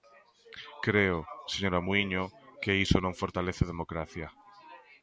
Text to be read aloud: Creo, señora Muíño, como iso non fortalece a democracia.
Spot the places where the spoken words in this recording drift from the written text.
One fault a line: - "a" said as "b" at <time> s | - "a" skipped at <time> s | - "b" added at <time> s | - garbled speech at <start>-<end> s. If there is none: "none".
- "como" said as "que" at 2.6 s